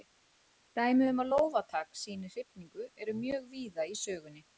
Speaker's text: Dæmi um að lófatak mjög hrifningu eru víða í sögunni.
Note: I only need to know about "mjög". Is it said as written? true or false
false